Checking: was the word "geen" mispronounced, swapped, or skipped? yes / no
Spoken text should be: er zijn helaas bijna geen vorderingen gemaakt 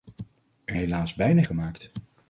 yes